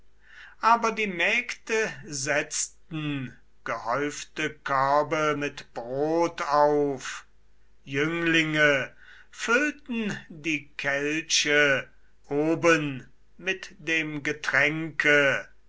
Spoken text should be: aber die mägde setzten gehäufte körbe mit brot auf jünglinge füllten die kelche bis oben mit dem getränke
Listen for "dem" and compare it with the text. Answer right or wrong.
right